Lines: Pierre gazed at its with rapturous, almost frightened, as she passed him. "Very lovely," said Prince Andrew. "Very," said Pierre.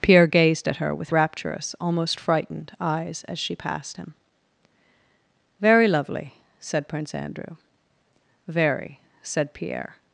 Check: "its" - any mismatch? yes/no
yes